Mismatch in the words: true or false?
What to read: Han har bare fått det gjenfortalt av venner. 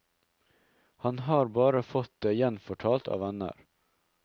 false